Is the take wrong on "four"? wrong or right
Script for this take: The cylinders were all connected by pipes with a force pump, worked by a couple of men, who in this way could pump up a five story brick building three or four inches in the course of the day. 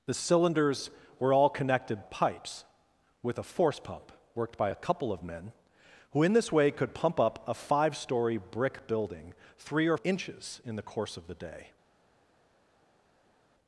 wrong